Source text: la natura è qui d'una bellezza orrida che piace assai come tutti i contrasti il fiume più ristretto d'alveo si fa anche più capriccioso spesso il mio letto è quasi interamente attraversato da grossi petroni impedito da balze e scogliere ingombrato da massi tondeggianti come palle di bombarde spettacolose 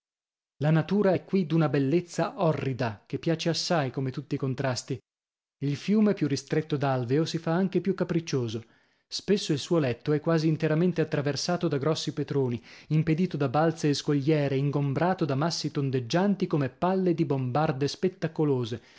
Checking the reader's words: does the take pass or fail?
fail